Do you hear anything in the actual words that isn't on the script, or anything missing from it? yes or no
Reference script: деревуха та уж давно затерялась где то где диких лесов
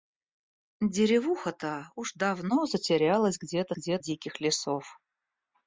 no